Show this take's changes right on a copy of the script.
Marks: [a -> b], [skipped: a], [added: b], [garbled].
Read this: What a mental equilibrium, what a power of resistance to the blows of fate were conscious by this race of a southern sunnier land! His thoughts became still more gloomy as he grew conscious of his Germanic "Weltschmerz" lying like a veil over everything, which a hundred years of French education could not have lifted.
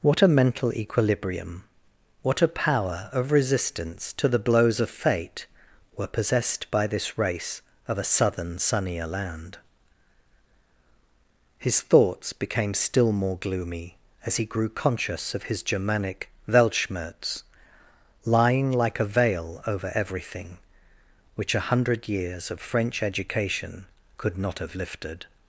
What a mental equilibrium, what a power of resistance to the blows of fate were [conscious -> possessed] by this race of a southern sunnier land! His thoughts became still more gloomy as he grew conscious of his Germanic "Weltschmerz" lying like a veil over everything, which a hundred years of French education could not have lifted.